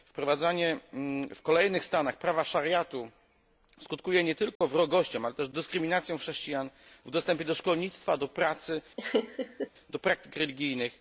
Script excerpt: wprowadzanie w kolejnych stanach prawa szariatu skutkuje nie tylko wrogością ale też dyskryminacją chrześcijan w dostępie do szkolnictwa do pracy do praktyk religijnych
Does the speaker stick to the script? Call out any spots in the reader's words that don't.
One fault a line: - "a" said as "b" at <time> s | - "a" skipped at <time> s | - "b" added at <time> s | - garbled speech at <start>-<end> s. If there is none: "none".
none